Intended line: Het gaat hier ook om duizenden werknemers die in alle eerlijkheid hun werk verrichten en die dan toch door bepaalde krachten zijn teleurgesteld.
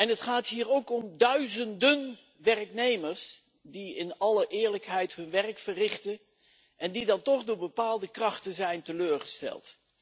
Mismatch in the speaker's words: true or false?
false